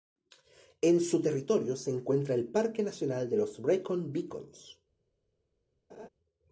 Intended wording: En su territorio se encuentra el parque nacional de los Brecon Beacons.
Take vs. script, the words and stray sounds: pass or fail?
fail